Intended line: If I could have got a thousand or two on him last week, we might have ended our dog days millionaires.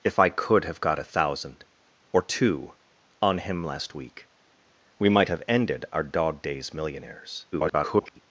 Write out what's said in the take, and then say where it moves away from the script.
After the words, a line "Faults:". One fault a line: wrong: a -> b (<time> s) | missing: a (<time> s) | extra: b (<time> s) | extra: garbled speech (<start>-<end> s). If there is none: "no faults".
If I could have got a thousand or two on him last week, we might have ended our dog days millionaires. [garbled]
Faults:
extra: garbled speech (7.5-8.2 s)